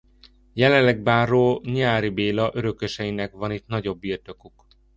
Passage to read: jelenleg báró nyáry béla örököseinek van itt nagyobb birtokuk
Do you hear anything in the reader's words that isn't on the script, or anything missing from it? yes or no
no